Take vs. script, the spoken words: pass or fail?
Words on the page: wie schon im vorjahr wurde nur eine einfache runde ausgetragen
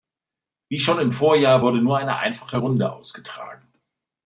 pass